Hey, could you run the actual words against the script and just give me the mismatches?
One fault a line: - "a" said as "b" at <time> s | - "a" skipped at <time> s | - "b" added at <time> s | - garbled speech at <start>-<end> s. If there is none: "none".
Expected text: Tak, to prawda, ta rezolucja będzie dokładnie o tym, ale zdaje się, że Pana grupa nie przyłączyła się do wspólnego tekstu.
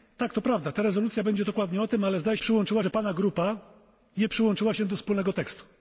- "się" said as "przyłączyła" at 2.4 s